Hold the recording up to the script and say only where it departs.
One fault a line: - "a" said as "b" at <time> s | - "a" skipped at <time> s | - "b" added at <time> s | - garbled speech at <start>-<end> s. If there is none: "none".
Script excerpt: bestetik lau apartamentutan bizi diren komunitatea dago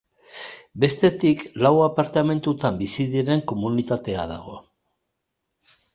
none